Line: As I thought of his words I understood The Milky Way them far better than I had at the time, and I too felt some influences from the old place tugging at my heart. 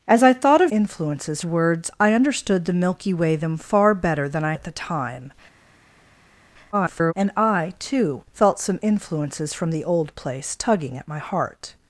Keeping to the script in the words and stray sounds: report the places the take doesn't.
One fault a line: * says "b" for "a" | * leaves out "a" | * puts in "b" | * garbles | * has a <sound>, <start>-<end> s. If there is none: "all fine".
* says "influences" for "his"
* leaves out "had"
* garbles